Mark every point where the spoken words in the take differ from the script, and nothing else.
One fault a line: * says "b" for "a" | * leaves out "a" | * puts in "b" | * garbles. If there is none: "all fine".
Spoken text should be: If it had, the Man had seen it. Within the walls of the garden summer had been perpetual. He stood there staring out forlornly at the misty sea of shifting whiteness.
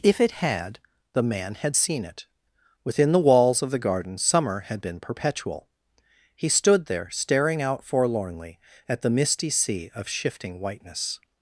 all fine